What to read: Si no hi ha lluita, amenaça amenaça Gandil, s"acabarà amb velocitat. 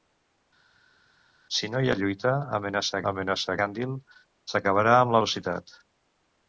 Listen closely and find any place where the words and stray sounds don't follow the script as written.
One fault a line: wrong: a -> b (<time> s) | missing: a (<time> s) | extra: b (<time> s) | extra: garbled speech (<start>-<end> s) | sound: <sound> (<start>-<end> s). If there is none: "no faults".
no faults